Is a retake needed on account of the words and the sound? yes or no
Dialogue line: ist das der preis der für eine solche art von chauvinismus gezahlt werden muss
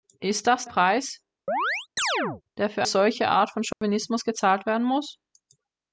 yes